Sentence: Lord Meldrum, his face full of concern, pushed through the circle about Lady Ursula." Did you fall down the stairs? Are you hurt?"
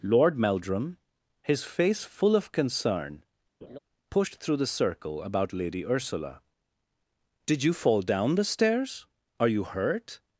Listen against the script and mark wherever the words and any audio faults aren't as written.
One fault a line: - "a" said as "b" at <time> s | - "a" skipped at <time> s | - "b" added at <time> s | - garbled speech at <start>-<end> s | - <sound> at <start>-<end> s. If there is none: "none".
- laugh at 3.6-3.8 s